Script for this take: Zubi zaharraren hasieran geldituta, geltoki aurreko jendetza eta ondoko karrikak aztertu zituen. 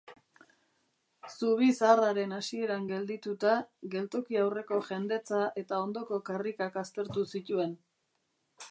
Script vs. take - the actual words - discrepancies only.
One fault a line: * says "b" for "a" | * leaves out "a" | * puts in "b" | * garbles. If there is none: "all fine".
all fine